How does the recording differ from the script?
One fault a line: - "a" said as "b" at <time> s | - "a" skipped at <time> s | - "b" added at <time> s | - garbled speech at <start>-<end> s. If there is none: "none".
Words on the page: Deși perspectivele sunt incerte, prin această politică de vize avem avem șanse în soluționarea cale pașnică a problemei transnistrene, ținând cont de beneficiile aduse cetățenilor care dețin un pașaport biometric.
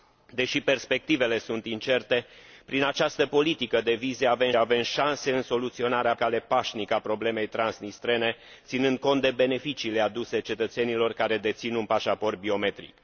none